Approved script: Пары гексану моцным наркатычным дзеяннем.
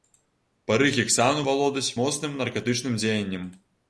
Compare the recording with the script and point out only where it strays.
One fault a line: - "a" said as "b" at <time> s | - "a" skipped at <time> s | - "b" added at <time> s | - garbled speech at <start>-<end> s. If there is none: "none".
- "валодаць" added at 1.5 s